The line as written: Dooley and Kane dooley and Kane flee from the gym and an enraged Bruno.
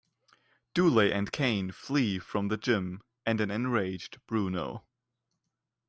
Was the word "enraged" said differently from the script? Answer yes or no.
no